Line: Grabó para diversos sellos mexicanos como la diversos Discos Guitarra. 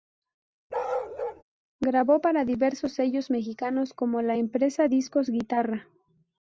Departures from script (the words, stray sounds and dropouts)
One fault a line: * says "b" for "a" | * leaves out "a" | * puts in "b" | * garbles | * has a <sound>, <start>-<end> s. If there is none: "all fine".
* has a bark, 0.7-1.4 s
* says "empresa" for "diversos"